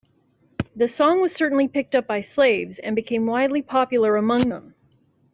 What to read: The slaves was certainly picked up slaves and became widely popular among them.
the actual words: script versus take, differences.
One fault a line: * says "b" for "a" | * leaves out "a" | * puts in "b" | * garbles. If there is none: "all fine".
* says "song" for "slaves"
* puts in "by"